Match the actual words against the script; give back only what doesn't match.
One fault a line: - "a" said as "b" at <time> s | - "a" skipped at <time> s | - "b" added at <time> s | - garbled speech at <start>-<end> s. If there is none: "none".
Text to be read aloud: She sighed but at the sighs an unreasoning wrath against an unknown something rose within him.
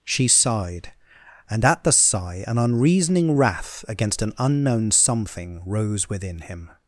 - "but" said as "and" at 1.5 s
- "sighs" said as "sigh" at 1.9 s